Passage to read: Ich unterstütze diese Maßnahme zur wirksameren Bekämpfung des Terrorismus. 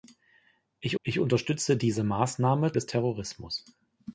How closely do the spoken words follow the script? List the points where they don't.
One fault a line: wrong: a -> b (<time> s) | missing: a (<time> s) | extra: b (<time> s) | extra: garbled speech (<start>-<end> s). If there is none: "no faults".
extra: ich (1.0 s)
missing: zur wirksameren Bekämpfung (2.7 s)